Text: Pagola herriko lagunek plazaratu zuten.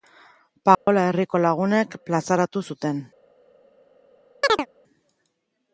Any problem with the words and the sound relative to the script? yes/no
yes